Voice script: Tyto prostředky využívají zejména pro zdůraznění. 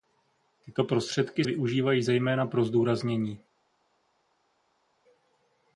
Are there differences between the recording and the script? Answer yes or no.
no